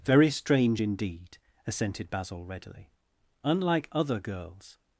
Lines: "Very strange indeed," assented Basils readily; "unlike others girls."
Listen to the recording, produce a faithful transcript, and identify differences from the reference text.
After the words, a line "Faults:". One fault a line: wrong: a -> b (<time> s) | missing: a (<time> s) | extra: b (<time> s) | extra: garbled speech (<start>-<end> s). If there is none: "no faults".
"Very strange indeed," assented Basil readily; "unlike other girls."
Faults:
wrong: Basils -> Basil (2.1 s)
wrong: others -> other (3.9 s)